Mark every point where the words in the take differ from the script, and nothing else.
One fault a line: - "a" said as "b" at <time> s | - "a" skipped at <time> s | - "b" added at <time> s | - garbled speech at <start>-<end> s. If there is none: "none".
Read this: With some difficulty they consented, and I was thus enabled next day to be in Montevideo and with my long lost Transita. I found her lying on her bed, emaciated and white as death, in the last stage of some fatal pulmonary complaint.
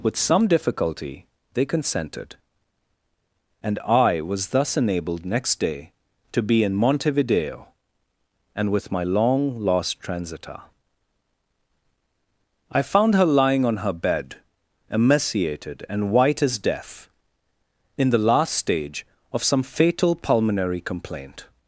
none